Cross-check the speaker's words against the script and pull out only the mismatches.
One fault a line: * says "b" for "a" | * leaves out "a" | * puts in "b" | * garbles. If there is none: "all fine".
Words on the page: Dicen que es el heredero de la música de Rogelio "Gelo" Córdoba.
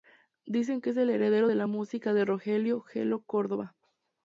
all fine